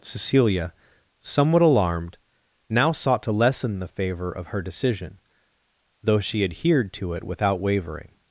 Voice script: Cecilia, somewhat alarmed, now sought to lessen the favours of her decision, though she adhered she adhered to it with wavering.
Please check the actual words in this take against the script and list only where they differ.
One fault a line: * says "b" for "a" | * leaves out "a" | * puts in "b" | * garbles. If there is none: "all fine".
* says "favour" for "favours"
* leaves out "she adhered"
* says "without" for "with"